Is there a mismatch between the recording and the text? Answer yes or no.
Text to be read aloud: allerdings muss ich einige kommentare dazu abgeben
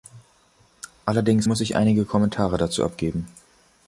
no